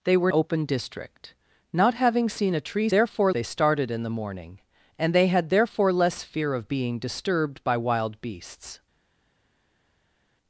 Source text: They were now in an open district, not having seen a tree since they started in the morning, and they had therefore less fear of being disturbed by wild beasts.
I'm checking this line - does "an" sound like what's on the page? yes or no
no